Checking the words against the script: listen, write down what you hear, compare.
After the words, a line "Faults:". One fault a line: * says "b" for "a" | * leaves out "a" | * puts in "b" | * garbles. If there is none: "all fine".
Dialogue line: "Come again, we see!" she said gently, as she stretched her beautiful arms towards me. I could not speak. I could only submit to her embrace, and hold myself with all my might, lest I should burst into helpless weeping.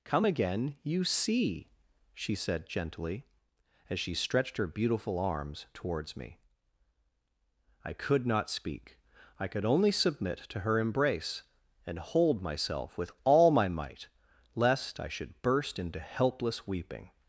"Come again, you see!" she said gently, as she stretched her beautiful arms towards me. I could not speak. I could only submit to her embrace, and hold myself with all my might, lest I should burst into helpless weeping.
Faults:
* says "you" for "we"